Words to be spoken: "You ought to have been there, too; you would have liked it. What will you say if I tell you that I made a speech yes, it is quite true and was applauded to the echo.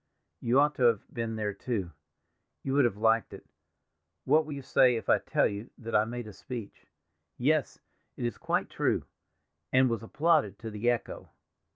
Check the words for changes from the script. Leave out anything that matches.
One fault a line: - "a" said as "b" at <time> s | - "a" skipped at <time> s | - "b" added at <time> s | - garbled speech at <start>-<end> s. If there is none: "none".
none